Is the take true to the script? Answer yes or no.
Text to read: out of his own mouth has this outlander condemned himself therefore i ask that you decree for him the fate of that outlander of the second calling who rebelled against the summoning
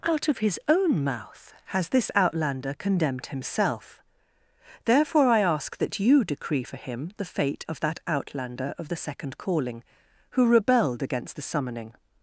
yes